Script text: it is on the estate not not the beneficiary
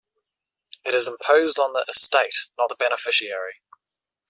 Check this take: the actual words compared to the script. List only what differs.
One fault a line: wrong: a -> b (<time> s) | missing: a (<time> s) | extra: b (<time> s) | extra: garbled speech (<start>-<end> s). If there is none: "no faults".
extra: imposed (1.1 s)
missing: not (2.7 s)